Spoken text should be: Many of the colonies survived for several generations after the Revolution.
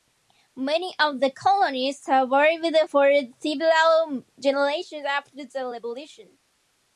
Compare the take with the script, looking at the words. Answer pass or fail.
pass